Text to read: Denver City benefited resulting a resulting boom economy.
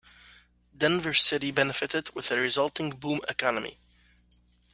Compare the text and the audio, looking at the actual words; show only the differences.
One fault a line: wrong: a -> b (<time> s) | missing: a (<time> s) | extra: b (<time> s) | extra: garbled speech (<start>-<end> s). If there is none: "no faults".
wrong: resulting -> with (2.1 s)